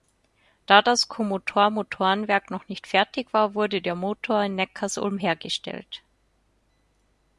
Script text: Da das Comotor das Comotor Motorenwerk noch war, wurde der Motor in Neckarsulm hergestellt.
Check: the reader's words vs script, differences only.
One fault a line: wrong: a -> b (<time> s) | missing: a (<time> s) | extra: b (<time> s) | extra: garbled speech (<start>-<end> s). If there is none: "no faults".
wrong: das Comotor Motorenwerk noch -> Motorenwerk noch nicht fertig (1.7 s)